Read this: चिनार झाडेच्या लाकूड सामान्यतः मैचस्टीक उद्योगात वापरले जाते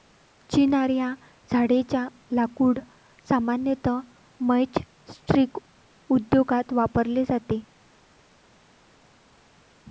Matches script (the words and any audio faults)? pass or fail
fail